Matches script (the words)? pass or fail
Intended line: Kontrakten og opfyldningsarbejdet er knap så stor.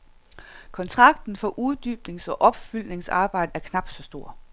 fail